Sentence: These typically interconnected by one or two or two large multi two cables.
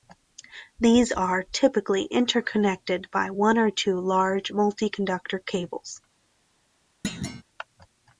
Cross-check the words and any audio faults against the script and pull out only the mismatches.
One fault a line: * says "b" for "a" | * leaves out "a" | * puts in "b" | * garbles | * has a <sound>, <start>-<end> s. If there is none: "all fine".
* puts in "are"
* leaves out "or two"
* says "conductor" for "two"
* has a thud, 7.0-7.4 s